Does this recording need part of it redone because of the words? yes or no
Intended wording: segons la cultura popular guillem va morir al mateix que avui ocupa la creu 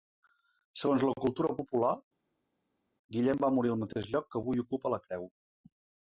yes